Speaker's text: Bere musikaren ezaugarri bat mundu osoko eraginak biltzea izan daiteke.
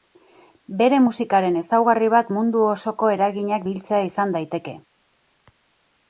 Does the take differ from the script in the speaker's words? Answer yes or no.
no